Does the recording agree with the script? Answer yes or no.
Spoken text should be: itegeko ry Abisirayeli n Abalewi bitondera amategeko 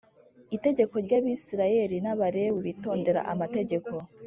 yes